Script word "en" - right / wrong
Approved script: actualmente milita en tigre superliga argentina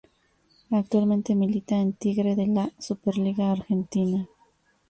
right